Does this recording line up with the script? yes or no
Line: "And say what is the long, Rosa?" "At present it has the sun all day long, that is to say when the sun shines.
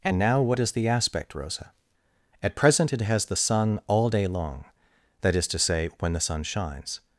no